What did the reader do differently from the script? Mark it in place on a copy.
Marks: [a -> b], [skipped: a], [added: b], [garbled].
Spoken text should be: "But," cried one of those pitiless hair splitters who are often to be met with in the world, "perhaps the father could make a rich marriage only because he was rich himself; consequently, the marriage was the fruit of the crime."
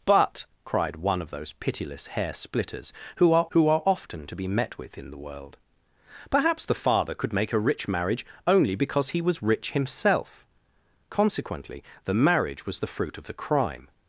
"But," cried one of those pitiless hair splitters who are [added: who are] often to be met with in the world, "perhaps the father could make a rich marriage only because he was rich himself; consequently, the marriage was the fruit of the crime."